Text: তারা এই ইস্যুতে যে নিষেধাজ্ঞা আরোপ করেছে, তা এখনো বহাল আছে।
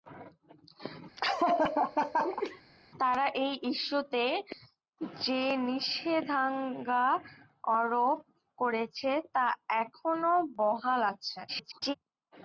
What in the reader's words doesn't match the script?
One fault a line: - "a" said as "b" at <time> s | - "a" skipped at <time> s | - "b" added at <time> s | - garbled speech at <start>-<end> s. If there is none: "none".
- garbled speech at 11.5-11.9 s